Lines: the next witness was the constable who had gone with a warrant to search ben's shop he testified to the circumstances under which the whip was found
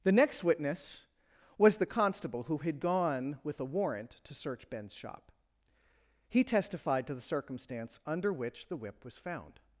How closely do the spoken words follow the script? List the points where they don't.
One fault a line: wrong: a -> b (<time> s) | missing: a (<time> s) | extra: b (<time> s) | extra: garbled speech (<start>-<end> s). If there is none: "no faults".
wrong: circumstances -> circumstance (7.2 s)